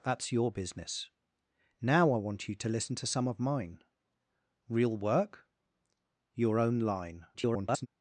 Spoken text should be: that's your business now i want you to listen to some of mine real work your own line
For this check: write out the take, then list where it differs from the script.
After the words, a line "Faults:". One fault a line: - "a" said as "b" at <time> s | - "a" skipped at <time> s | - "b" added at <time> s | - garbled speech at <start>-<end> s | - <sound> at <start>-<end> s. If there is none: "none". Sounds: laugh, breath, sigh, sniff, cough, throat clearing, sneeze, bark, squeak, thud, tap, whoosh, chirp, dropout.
that's your business now i want you to listen to some of mine real work your own line [garbled]
Faults:
- garbled speech at 7.3-7.9 s